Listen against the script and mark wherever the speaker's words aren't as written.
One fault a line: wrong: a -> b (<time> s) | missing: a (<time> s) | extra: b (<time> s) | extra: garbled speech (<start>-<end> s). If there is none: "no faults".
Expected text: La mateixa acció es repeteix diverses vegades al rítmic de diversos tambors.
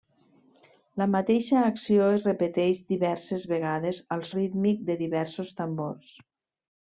no faults